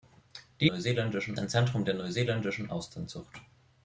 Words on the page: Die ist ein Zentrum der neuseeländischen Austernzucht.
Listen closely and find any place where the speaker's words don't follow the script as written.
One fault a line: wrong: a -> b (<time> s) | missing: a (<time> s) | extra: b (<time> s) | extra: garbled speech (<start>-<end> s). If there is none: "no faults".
wrong: ist -> neuseeländischen (0.6 s)